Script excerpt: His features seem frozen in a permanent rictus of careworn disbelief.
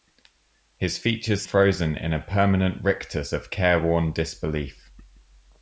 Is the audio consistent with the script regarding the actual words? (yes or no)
no